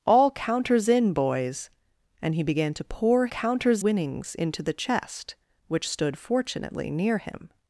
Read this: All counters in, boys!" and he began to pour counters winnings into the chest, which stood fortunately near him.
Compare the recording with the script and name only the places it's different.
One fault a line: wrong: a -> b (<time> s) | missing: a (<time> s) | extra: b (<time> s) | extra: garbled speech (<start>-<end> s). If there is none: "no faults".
no faults